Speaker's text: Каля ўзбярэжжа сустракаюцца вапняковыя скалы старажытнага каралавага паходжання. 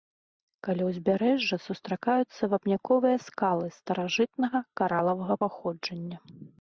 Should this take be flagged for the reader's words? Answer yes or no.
no